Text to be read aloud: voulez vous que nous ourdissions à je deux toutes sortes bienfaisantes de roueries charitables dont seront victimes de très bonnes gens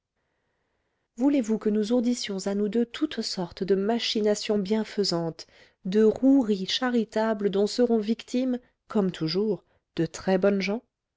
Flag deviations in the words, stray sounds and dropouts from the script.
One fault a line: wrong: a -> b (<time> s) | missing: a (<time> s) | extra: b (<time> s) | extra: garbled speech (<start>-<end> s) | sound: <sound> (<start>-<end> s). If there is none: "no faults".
wrong: je -> nous (2.6 s)
extra: de machinations (3.6 s)
extra: comme toujours (8.9 s)